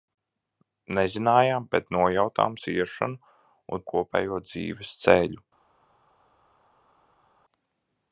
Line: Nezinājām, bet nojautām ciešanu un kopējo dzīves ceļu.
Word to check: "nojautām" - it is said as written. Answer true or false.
true